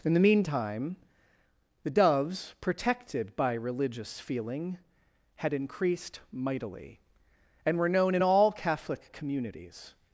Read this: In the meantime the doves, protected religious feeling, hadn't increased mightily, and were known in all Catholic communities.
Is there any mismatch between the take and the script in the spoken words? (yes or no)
yes